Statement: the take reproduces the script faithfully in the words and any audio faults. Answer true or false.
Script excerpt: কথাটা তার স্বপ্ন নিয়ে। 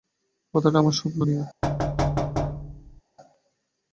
false